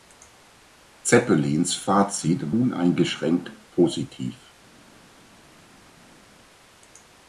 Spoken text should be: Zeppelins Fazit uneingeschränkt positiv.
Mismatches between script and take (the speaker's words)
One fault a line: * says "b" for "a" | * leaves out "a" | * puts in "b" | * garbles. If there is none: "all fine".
all fine